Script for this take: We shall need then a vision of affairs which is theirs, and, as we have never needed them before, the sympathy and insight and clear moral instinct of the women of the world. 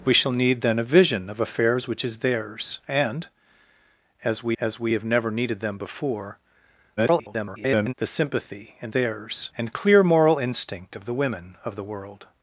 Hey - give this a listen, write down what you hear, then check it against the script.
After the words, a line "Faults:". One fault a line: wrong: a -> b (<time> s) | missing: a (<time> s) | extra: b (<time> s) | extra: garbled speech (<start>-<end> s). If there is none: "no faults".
We shall need then a vision of affairs which is theirs, and, as we as we have never needed them before, [garbled] the sympathy and theirs and clear moral instinct of the women of the world.
Faults:
extra: as we (4.6 s)
extra: garbled speech (7.0-7.9 s)
wrong: insight -> theirs (8.9 s)